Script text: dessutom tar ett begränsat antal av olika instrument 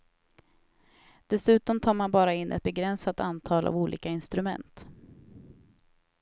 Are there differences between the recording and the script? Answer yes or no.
yes